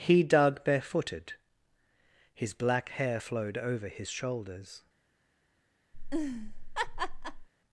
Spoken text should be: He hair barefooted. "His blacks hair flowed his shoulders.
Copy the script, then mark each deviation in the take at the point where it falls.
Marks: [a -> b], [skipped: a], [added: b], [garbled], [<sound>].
He [hair -> dug] barefooted. "His [blacks -> black] hair flowed [added: over] his shoulders. [laugh]